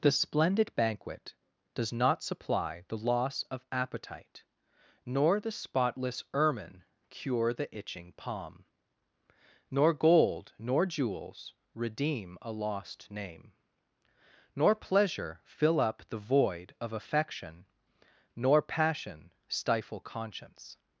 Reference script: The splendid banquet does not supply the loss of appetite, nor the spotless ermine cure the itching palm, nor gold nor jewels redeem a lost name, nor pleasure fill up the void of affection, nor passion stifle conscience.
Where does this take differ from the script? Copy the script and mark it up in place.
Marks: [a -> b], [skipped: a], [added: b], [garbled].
The splendid banquet does not supply the loss of appetite, nor the spotless ermine cure the itching palm, nor gold nor jewels redeem a lost name, nor pleasure fill up the void of affection, nor passion stifle conscience.